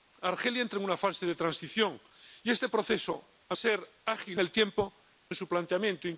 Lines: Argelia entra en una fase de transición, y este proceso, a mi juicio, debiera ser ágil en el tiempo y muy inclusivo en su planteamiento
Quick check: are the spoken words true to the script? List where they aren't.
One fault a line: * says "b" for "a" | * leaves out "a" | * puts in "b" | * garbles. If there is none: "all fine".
* leaves out "mi juicio debiera"
* leaves out "en"
* leaves out "y muy inclusivo"